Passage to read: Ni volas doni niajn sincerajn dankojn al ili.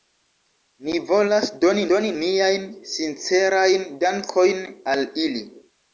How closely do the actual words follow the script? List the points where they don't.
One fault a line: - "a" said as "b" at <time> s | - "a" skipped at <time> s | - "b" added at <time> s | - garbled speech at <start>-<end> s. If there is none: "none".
- "doni" added at 1.9 s